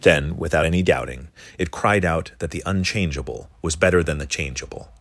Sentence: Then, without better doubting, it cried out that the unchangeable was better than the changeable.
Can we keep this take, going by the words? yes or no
no